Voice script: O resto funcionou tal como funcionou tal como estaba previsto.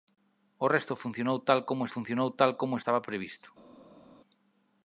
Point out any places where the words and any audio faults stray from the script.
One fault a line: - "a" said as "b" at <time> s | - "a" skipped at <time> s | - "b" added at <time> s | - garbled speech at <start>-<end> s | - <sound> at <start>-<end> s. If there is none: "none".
none